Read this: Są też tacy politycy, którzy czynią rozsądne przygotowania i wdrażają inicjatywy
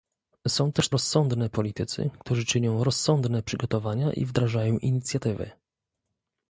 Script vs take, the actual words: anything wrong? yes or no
yes